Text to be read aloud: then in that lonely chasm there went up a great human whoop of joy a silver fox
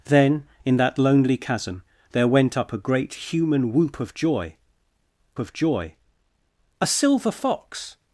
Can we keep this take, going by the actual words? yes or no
no